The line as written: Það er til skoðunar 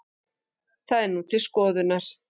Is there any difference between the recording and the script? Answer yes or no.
yes